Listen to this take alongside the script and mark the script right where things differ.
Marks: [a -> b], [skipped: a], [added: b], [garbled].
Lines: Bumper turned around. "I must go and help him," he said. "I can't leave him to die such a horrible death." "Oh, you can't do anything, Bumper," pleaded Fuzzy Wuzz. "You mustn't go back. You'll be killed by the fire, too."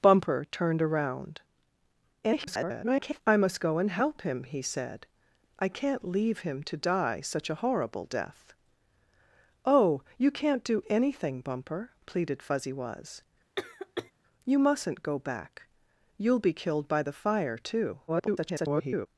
Bumper turned around. [garbled] "I must go and help him," he said. "I can't leave him to die such a horrible death." "Oh, you can't do anything, Bumper," pleaded Fuzzy Wuzz. "You mustn't go back. You'll be killed by the fire, too." [garbled]